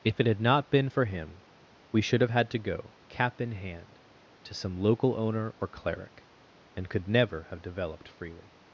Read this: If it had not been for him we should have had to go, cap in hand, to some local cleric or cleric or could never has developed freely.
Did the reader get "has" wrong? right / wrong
wrong